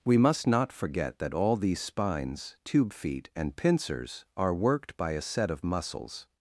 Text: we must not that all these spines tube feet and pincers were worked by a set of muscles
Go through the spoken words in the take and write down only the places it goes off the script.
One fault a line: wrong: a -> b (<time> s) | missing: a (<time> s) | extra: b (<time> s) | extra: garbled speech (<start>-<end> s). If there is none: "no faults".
extra: forget (0.7 s)
wrong: were -> are (4.4 s)